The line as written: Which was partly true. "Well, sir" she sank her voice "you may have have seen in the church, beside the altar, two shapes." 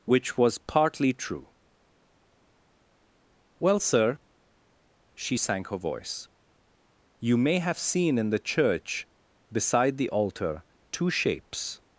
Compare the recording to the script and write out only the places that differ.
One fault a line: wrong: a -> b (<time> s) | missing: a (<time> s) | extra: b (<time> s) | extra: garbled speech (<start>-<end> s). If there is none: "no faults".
missing: have (7.8 s)